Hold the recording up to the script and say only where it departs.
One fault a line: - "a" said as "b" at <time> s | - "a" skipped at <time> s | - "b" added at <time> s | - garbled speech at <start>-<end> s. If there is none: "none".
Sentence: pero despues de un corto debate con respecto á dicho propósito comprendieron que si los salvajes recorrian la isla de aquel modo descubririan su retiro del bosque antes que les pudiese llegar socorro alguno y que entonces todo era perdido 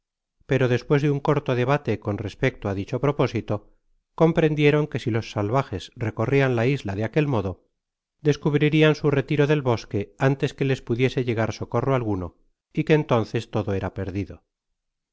none